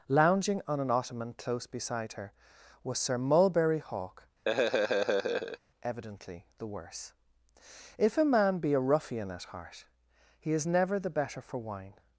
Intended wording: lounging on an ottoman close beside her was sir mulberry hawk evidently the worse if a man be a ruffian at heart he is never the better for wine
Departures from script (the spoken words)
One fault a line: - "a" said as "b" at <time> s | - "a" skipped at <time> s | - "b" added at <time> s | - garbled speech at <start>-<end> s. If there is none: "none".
none